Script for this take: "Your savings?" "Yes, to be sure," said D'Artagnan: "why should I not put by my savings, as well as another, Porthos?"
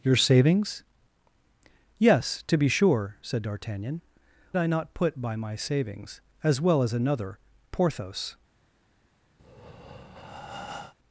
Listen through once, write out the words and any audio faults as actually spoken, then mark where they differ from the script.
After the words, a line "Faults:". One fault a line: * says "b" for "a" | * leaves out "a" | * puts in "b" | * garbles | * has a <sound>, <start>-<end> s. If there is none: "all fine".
"Your savings?" "Yes, to be sure," said D'Artagnan: "I not put by my savings, as well as another, Porthos?"
Faults:
* leaves out "why should"
* has a breath, 9.4-10.9 s